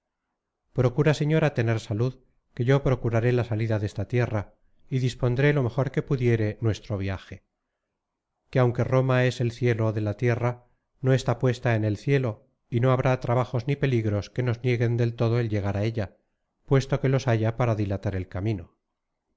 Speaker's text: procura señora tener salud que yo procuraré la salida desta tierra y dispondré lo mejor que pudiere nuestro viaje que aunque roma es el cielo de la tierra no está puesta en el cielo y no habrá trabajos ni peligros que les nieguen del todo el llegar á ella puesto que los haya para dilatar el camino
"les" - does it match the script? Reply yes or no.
no